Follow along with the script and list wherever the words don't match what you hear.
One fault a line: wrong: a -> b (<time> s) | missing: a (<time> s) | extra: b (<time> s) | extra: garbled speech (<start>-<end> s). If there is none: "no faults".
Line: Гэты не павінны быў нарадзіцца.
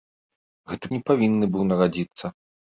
no faults